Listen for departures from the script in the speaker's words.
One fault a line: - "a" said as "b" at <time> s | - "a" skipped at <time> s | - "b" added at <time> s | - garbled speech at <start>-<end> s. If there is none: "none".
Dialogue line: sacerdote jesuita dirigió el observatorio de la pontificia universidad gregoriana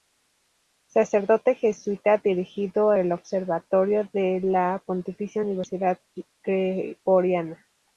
none